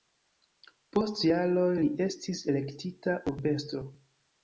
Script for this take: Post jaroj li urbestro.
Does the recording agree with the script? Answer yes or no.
no